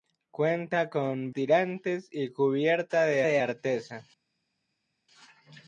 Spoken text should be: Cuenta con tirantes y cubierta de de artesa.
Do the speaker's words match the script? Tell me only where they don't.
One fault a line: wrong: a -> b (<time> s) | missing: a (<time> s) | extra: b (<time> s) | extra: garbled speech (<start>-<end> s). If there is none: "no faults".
no faults